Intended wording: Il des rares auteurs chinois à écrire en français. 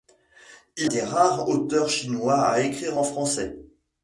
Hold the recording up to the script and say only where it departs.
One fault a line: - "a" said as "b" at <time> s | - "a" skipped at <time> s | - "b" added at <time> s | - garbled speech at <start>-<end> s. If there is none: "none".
none